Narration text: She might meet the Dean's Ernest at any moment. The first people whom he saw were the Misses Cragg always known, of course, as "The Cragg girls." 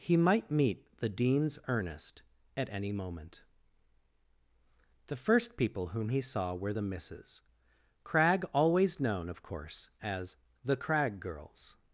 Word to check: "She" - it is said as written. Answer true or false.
false